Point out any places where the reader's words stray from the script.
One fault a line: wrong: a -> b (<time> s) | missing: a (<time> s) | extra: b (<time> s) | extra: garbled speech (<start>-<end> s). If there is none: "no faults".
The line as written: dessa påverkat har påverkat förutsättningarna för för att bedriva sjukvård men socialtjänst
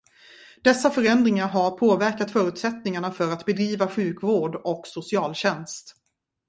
wrong: påverkat -> förändringar (0.9 s)
missing: för (3.3 s)
wrong: men -> och (4.6 s)